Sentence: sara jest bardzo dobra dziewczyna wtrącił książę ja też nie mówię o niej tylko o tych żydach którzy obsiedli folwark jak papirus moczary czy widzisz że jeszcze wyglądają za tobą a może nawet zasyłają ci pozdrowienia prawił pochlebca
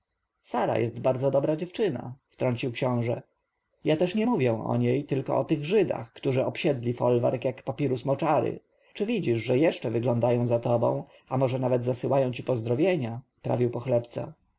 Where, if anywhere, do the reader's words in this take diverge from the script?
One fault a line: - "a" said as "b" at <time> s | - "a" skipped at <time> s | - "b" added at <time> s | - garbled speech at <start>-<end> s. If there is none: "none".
none